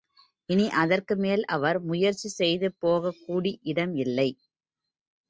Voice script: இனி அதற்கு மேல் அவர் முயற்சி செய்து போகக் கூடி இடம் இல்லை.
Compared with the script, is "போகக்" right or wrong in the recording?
right